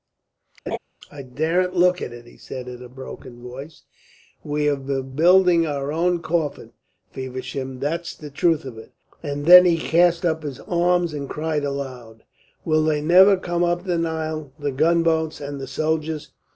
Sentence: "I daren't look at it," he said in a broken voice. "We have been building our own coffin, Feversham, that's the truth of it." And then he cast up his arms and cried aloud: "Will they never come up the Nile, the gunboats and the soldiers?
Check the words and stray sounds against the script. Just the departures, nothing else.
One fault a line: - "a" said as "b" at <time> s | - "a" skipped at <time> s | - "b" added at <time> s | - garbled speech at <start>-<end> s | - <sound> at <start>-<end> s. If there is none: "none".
- laugh at 0.7-0.8 s